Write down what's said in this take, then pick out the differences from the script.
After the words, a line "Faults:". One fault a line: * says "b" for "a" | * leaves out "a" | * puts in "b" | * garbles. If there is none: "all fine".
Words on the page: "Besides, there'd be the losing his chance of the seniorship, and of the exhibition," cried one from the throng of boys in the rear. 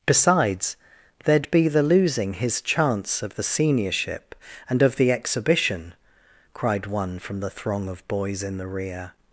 "Besides, there'd be the losing his chance of the seniorship, and of the exhibition," cried one from the throng of boys in the rear.
Faults:
all fine